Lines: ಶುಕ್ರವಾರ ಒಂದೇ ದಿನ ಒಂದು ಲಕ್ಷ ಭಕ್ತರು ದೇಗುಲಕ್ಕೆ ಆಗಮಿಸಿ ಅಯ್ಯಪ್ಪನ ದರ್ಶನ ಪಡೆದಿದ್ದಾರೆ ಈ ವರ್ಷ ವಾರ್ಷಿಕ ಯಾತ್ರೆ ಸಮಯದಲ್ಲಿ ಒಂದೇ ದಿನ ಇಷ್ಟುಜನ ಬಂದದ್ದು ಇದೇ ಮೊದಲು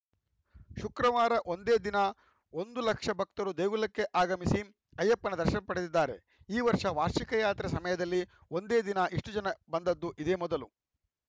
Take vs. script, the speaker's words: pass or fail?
pass